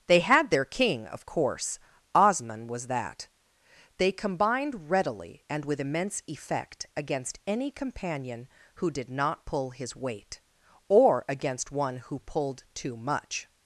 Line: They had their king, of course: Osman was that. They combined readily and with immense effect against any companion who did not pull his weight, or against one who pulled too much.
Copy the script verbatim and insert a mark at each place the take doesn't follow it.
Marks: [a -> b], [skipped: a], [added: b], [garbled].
They had their king, of course: Osman was that. They combined readily and with immense effect against any companion who did not pull his weight, or against one who pulled too much.